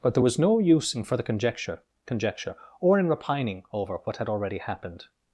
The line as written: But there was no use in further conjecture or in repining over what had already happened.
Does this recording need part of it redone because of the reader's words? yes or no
yes